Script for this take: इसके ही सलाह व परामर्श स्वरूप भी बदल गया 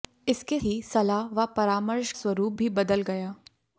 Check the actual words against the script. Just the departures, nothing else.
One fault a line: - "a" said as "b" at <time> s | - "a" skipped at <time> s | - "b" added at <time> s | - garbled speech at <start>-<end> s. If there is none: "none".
none